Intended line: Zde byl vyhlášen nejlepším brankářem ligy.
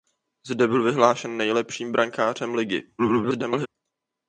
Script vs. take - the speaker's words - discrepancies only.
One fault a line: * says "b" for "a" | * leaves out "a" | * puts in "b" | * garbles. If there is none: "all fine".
* garbles